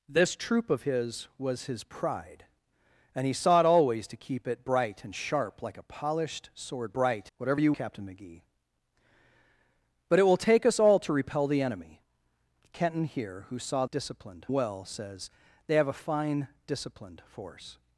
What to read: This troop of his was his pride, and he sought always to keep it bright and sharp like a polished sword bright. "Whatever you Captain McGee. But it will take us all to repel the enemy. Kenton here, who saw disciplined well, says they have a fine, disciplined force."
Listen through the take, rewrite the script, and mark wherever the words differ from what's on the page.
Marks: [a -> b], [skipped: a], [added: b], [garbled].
This troop of his was his pride, and he sought always to keep it bright and sharp like a polished sword bright. "Whatever you Captain McGee. But it will take us all to repel the enemy. Kenton here, who saw disciplined well, says they have a fine, disciplined force."